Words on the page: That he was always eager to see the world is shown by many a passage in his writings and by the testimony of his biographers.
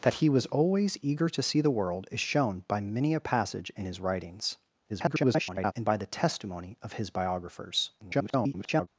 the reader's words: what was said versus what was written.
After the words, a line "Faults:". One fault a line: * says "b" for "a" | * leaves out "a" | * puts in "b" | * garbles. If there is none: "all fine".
That he was always eager to see the world is shown by many a passage in his writings [garbled] and by the testimony of his biographers. [garbled]
Faults:
* garbles
* garbles